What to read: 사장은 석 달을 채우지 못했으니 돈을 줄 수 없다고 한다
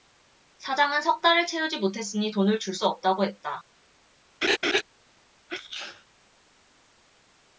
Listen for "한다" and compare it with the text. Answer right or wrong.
wrong